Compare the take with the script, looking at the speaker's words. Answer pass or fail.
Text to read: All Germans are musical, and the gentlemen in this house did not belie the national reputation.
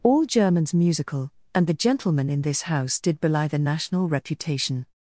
fail